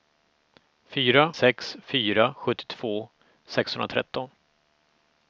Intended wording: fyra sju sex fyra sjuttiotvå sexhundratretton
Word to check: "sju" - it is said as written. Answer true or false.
false